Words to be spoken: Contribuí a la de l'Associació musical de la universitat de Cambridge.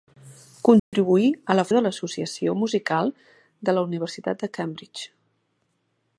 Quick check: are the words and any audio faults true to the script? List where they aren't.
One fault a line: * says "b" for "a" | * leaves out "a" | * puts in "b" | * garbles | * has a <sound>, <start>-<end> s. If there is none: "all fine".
* has a dropout, 0.8-0.9 s